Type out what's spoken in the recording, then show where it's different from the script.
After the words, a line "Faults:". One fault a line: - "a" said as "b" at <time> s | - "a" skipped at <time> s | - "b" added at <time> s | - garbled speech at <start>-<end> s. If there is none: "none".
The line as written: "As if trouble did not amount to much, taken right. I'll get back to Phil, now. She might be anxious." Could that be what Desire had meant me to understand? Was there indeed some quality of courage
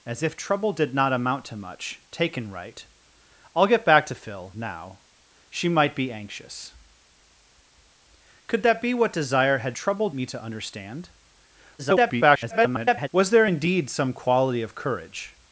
"As if trouble did not amount to much, taken right. I'll get back to Phil, now. She might be anxious." Could that be what Desire had trouble me to understand? [garbled] Was there indeed some quality of courage
Faults:
- "meant" said as "trouble" at 9.7 s
- garbled speech at 11.8-13.1 s